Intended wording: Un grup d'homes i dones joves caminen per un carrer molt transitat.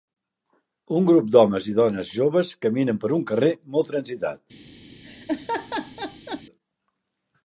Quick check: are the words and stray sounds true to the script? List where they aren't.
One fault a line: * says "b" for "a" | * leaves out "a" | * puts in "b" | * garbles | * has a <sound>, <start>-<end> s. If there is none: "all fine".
* has a laugh, 5.0-6.4 s